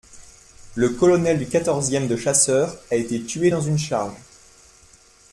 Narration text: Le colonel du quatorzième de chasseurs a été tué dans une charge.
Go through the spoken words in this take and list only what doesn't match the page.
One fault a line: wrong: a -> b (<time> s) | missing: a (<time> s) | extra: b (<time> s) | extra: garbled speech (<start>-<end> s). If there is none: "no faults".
no faults